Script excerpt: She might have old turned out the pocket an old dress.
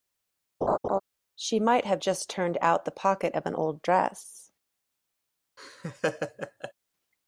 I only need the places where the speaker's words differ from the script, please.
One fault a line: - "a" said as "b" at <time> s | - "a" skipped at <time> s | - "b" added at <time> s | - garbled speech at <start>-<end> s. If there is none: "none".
- "old" said as "just" at 2.0 s
- "of" added at 3.3 s